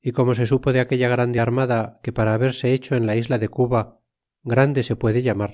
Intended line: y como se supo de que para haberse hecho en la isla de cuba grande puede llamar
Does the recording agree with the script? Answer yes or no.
no